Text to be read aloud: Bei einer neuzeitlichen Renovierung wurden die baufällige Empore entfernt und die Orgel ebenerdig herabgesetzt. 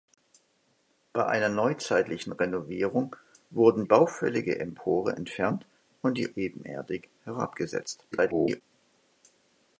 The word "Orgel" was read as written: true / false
false